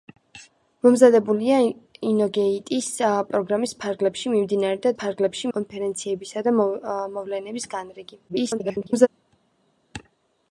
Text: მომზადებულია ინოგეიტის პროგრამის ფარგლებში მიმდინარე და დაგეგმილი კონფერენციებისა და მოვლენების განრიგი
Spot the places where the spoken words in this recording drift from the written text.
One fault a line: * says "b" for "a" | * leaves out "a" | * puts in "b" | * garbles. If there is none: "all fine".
* says "ფარგლებში" for "დაგეგმილი"
* garbles